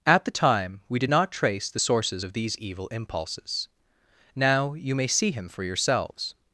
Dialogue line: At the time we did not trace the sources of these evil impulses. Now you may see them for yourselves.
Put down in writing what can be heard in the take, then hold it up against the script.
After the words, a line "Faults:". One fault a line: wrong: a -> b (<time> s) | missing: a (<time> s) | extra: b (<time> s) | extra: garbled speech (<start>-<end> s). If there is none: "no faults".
At the time we did not trace the sources of these evil impulses. Now you may see him for yourselves.
Faults:
wrong: them -> him (5.3 s)